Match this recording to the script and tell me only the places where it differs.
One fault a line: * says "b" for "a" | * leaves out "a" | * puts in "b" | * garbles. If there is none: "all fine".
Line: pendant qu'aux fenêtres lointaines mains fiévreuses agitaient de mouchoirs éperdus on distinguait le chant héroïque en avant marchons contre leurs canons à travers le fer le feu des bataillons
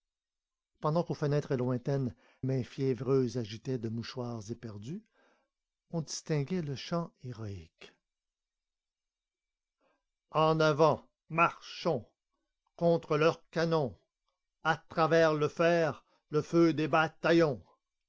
all fine